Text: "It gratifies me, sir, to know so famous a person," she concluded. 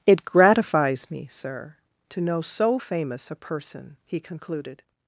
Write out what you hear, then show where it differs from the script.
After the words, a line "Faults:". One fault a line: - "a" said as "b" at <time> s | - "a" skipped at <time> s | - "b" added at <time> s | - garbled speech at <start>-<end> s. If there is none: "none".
"It gratifies me, sir, to know so famous a person," he concluded.
Faults:
- "she" said as "he" at 4.0 s